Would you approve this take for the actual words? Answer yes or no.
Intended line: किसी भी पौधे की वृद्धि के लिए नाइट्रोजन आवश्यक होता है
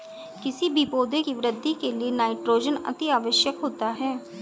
no